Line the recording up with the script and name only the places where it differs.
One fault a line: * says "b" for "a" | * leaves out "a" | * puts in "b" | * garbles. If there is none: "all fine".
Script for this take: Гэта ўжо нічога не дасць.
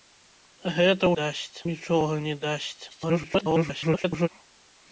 * says "дасць" for "ўжо"
* garbles